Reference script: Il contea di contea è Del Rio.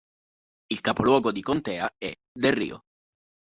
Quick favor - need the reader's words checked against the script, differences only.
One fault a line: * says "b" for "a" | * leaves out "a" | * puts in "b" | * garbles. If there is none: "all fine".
* says "capoluogo" for "contea"